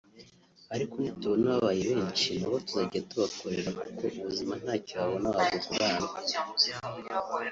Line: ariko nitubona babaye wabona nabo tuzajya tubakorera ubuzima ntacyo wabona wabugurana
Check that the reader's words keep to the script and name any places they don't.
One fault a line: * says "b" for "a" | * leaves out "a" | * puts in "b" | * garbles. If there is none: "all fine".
* says "benshi" for "wabona"
* puts in "kuko"